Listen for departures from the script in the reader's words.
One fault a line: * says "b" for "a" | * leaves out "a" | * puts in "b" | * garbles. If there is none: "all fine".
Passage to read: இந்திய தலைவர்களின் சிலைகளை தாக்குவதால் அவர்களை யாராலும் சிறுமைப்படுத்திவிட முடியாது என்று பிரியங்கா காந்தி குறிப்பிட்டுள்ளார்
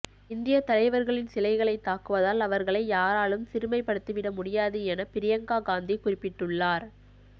* says "என" for "என்று"